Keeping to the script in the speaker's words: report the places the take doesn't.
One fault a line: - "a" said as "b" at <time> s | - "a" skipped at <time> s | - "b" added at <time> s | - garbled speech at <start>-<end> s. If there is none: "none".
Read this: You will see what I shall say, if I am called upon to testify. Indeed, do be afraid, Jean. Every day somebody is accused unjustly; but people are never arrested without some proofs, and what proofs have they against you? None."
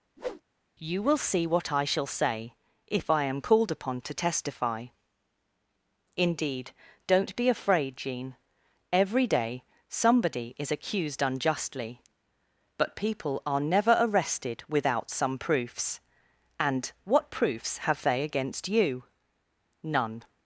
- "do" said as "don't" at 7.1 s